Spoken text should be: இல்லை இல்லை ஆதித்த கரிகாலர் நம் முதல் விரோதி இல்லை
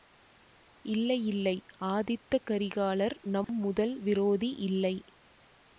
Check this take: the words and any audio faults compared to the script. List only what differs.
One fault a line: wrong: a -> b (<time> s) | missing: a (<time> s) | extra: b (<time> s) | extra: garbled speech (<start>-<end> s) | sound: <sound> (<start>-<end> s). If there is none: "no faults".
sound: dropout (3.4-3.5 s)